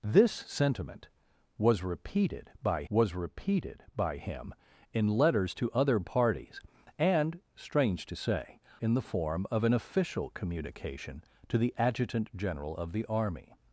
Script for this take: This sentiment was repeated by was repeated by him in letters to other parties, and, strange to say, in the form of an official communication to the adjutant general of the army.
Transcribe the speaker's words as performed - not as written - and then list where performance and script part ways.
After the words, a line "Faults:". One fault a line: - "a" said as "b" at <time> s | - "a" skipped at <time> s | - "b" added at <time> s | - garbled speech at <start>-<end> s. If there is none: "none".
This sentiment was repeated by was repeated by him in letters to other parties, and, strange to say, in the form of an official communication to the adjutant general of the army.
Faults:
none